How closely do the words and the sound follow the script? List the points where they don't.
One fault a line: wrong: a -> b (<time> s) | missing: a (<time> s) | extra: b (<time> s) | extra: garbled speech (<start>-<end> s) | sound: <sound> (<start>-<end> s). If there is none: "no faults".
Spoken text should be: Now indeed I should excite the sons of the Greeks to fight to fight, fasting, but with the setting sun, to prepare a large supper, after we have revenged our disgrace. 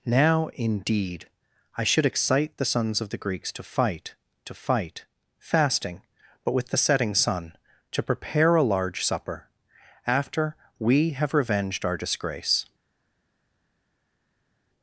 no faults